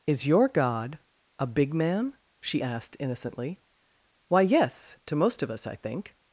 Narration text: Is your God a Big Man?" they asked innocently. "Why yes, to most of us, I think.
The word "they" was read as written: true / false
false